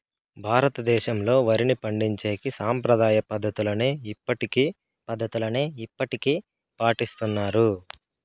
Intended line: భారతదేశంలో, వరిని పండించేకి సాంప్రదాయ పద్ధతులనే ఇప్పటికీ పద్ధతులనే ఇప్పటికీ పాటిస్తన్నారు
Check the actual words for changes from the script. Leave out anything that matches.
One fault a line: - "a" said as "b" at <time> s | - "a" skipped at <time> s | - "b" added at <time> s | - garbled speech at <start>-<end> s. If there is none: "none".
none